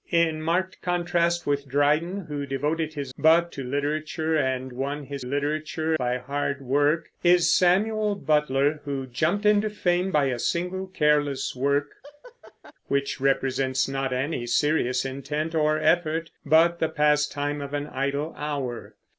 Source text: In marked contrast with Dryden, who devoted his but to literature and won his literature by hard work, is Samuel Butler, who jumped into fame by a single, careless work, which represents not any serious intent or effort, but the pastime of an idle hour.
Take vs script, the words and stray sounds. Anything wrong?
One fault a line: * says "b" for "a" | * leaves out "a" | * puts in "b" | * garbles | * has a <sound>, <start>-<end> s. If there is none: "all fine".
* has a laugh, 12.0-12.7 s